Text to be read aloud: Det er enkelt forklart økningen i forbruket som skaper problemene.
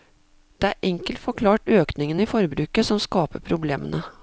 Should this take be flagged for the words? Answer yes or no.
no